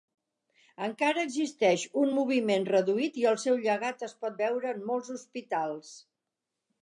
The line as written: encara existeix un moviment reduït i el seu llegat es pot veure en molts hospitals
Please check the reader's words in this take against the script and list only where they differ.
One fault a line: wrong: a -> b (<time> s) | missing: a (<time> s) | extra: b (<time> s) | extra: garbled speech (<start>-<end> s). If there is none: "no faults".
no faults